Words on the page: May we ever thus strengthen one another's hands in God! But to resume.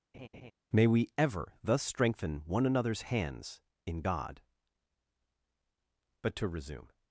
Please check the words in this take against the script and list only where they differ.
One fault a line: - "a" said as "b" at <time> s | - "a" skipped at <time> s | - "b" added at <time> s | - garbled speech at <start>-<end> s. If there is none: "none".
none